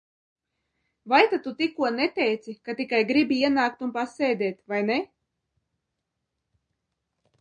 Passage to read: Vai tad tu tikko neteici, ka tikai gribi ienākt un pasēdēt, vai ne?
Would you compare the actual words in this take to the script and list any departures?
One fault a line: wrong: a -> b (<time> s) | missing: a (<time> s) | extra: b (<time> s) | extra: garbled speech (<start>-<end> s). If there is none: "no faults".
no faults